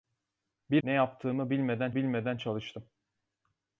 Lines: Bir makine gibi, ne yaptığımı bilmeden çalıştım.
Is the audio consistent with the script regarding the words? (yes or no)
no